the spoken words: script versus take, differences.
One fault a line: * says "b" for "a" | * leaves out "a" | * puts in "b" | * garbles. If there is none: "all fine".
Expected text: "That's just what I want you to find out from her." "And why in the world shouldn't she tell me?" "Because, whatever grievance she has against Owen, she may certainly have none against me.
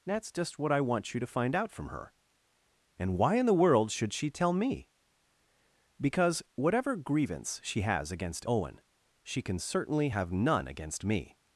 * says "should" for "shouldn't"
* says "can" for "may"